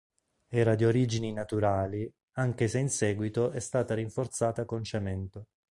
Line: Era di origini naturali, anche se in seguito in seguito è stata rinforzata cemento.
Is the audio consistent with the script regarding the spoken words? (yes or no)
no